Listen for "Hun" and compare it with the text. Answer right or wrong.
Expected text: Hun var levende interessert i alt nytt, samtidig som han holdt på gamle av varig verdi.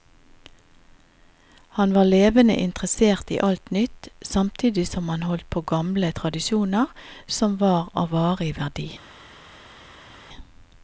wrong